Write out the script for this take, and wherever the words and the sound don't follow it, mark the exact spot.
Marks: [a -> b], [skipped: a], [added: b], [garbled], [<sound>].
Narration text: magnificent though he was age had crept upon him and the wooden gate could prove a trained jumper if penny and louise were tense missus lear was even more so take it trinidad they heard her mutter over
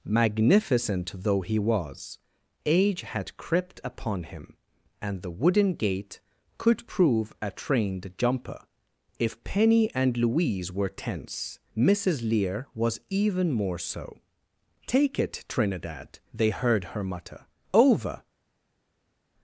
magnificent though he was age had crept upon him and the wooden gate could prove a trained jumper if penny and louise were tense missus lear was even more so take it trinidad they heard her mutter over